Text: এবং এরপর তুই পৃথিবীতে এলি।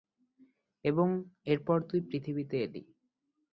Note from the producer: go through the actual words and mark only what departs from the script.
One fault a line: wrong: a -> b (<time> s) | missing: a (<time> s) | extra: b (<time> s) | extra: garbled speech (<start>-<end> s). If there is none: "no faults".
no faults